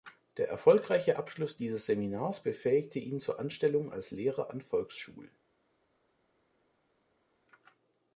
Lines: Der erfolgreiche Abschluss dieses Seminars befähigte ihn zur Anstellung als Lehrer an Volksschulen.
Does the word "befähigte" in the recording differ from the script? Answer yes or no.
no